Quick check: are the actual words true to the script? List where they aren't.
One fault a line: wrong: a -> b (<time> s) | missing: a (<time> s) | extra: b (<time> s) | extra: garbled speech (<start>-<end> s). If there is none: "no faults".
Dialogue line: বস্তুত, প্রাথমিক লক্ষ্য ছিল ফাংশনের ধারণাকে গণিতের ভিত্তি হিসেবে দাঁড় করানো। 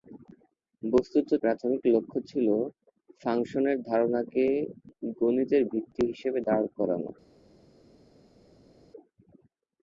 no faults